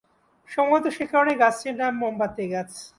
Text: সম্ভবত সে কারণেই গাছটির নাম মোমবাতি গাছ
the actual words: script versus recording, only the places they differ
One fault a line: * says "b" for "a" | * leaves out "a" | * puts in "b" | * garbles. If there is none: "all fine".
all fine